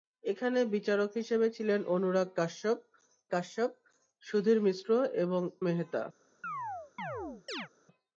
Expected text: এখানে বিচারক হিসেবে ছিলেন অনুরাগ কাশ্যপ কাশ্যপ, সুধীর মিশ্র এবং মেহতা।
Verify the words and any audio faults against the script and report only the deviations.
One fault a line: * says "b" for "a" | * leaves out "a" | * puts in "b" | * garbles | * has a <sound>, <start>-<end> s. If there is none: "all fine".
* has a chirp, 6.4-7.7 s